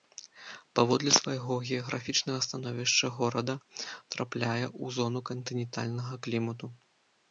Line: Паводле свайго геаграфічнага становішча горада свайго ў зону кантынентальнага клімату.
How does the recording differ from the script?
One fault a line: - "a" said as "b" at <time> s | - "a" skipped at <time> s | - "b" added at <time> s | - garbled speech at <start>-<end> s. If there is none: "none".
- "свайго" said as "трапляе" at 4.1 s